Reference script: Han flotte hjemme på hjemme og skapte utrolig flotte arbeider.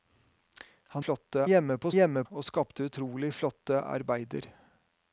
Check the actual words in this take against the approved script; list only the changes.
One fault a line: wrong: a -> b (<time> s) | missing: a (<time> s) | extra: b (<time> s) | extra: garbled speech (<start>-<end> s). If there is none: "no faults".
no faults